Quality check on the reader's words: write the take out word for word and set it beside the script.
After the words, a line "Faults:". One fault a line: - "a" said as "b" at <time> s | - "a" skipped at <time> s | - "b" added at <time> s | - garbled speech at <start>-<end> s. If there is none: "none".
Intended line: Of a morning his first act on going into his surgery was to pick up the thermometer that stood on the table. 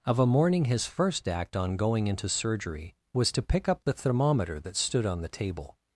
Of a morning his first act on going into surgery was to pick up the thermometer that stood on the table.
Faults:
- "his" skipped at 2.3 s